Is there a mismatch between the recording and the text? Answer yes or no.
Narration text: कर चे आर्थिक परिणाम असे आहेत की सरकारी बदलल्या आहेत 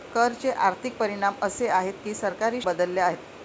no